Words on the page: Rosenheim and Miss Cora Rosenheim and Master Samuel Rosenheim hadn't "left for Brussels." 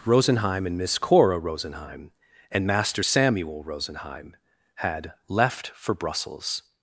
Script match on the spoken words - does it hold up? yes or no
no